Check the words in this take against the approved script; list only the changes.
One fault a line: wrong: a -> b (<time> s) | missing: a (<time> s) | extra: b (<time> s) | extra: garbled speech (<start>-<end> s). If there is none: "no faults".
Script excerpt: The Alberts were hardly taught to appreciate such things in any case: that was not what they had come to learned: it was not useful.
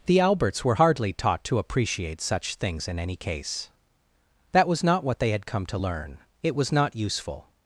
wrong: learned -> learn (5.8 s)